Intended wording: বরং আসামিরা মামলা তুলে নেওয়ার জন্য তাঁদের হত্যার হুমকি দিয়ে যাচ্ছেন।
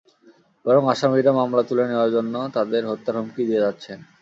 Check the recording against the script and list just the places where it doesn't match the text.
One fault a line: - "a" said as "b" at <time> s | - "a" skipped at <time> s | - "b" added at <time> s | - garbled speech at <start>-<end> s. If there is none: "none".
none